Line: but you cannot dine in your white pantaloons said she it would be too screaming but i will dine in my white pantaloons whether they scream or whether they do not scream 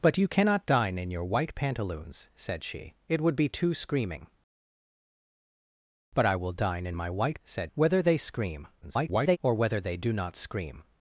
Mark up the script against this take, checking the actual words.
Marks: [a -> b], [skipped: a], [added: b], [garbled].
but you cannot dine in your white pantaloons said she it would be too screaming but i will dine in my white [pantaloons -> said] whether they scream [garbled] or whether they do not scream